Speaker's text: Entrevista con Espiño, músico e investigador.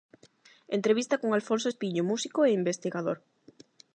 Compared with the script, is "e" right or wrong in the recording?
right